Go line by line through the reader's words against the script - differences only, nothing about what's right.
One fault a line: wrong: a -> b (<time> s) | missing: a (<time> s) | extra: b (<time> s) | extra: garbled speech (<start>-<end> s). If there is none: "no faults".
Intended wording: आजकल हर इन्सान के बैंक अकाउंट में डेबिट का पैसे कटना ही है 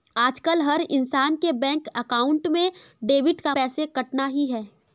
no faults